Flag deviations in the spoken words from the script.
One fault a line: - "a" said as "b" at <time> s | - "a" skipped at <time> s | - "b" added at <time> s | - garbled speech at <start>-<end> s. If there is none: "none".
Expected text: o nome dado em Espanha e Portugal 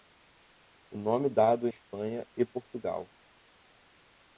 - "em" skipped at 1.7 s